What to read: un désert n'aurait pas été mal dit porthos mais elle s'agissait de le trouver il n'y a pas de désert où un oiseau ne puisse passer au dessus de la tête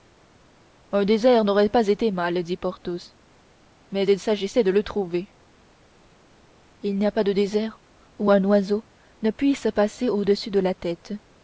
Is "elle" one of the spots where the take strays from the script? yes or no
yes